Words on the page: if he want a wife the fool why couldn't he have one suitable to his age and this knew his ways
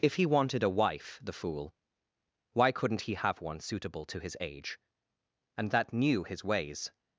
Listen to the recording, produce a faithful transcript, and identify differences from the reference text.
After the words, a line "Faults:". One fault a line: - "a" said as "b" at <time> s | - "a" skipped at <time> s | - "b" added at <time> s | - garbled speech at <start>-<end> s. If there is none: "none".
if he wanted a wife the fool why couldn't he have one suitable to his age and that knew his ways
Faults:
- "want" said as "wanted" at 0.2 s
- "this" said as "that" at 5.7 s